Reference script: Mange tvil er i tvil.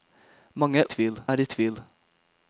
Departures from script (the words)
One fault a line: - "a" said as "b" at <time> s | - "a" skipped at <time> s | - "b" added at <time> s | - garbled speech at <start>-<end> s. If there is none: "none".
none